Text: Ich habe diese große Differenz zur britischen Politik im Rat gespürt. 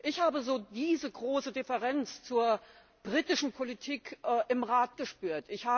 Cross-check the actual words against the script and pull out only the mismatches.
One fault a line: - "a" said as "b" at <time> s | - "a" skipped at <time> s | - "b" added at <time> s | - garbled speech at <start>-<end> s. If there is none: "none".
none